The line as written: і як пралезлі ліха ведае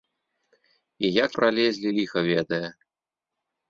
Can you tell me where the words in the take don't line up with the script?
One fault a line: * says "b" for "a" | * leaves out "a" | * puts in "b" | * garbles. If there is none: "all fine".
all fine